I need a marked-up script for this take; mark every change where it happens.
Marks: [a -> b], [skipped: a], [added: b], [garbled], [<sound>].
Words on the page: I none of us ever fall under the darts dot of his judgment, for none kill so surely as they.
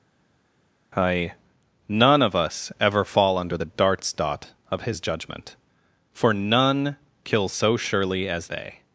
I none of us ever fall under the darts dot of his judgment, for none kill so surely as they.